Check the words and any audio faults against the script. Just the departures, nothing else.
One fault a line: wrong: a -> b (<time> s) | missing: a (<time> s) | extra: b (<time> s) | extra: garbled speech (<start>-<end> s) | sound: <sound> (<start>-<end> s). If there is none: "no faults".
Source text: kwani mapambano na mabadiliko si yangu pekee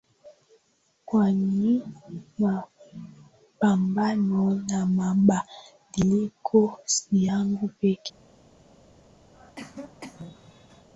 sound: cough (9.3-10.9 s)